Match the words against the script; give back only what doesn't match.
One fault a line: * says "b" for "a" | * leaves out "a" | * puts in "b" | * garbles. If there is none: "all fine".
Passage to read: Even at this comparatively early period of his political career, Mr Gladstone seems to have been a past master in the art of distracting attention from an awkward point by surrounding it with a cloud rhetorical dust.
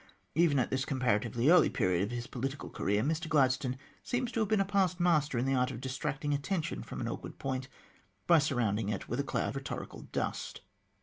all fine